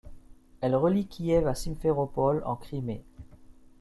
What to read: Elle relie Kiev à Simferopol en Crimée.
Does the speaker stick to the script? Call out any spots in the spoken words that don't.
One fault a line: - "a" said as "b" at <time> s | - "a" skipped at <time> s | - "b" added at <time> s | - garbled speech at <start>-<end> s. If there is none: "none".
none